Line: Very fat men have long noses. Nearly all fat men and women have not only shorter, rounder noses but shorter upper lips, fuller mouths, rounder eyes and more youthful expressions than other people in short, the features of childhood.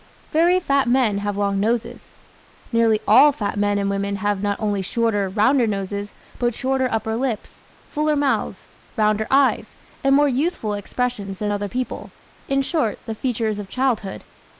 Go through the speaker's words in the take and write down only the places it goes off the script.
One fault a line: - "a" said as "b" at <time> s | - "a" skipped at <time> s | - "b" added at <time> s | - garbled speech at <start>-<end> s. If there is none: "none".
none